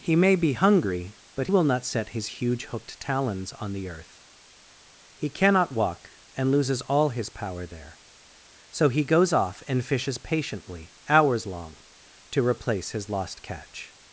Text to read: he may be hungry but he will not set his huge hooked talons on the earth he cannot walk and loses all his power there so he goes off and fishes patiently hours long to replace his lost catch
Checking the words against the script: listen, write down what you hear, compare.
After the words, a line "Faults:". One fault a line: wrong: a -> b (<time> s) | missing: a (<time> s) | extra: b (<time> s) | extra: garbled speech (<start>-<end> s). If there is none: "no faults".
he may be hungry but will not set his huge hooked talons on the earth he cannot walk and loses all his power there so he goes off and fishes patiently hours long to replace his lost catch
Faults:
missing: he (1.5 s)